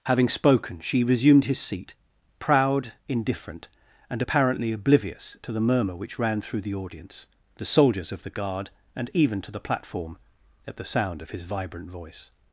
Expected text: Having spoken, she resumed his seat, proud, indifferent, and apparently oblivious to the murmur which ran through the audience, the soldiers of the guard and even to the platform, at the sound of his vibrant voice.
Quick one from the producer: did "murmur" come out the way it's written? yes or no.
yes